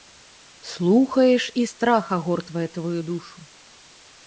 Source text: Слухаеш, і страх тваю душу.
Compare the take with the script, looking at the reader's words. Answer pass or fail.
fail